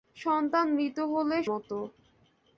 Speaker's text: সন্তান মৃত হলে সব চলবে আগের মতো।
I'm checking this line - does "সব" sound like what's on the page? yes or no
no